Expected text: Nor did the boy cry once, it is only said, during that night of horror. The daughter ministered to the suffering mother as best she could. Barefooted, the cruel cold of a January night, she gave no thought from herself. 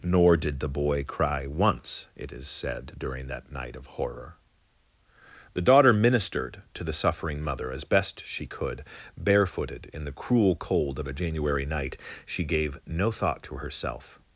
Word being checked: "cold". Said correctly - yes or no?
yes